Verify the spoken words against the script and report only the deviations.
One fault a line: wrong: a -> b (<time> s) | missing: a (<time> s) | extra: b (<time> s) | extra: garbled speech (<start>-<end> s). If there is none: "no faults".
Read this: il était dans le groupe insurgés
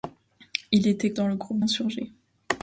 no faults